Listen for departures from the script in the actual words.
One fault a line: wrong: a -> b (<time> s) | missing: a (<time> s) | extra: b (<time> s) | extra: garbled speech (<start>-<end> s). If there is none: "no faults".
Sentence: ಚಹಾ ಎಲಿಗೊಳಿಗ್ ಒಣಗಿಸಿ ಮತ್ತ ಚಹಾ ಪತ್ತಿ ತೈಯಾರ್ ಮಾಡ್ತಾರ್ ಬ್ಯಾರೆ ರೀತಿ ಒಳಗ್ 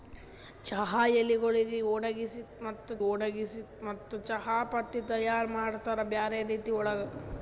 extra: ಒಣಗಿಸಿ ಮತ್ತ (3.1 s)